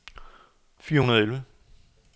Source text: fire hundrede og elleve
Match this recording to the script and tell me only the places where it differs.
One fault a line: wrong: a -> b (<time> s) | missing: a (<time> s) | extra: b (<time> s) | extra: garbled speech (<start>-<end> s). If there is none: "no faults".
no faults